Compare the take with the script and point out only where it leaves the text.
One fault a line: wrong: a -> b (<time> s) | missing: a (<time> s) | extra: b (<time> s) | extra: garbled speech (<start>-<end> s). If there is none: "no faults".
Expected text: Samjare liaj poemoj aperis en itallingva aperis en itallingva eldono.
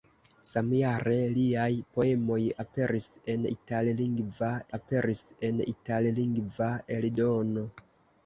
no faults